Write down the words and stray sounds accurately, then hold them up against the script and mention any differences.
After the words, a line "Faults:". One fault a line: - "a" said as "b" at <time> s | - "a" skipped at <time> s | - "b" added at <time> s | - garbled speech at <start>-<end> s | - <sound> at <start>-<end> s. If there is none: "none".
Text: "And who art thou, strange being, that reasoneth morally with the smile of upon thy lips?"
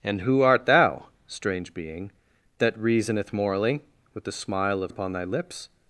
"And who art thou, strange being, that reasoneth morally with the smile of upon thy lips?"
Faults:
none